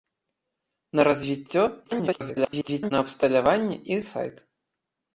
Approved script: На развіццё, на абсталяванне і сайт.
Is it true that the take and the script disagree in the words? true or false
true